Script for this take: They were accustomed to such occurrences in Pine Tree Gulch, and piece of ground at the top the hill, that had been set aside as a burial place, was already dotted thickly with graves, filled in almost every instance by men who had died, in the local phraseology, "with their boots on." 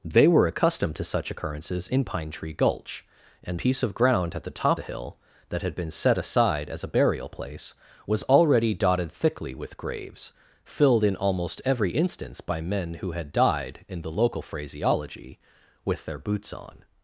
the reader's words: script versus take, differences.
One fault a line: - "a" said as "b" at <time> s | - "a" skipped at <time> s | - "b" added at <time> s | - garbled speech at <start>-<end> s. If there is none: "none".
none